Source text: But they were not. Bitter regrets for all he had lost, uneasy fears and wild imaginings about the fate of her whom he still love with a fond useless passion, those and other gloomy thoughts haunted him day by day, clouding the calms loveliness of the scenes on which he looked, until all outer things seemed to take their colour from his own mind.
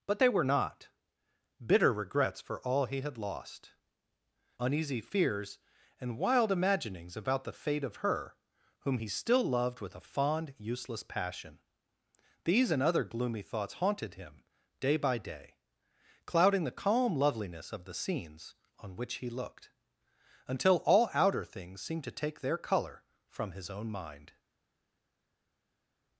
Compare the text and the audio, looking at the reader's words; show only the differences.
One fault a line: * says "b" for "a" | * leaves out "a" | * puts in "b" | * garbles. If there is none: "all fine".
* says "loved" for "love"
* says "these" for "those"
* says "calm" for "calms"